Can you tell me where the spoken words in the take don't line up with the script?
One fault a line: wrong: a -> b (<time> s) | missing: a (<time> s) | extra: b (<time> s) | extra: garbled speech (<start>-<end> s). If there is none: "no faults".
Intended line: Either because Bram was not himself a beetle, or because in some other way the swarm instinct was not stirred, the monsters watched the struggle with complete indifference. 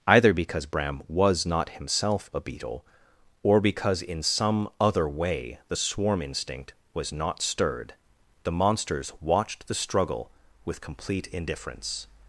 no faults